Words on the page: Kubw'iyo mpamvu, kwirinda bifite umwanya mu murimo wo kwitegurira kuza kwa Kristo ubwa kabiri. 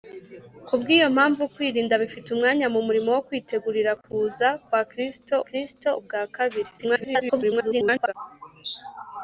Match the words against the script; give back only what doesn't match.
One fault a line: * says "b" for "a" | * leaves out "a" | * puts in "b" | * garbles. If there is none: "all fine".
* puts in "Kristo"
* garbles